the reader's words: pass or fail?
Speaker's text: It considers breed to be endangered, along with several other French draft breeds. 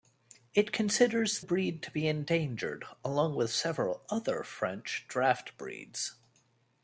pass